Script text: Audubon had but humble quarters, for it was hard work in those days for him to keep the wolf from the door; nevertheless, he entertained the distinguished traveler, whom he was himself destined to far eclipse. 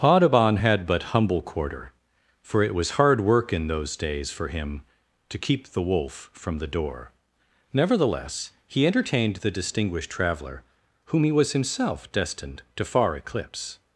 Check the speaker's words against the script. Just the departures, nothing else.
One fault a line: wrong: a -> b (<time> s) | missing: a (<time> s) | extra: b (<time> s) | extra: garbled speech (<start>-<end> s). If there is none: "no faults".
wrong: quarters -> quarter (1.4 s)